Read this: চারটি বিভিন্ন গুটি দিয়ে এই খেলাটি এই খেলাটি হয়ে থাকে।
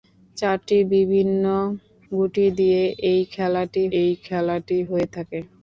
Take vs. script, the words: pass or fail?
pass